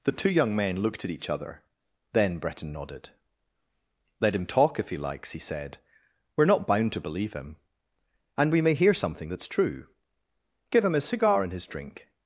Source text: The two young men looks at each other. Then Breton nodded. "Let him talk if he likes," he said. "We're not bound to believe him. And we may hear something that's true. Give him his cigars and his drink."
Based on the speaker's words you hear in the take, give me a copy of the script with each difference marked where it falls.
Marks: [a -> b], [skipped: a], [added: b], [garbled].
The two young men [looks -> looked] at each other. Then Breton nodded. "Let him talk if he likes," he said. "We're not bound to believe him. And we may hear something that's true. Give him his [cigars -> cigar] and his drink."